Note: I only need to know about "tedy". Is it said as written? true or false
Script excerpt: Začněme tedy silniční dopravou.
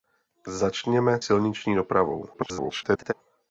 false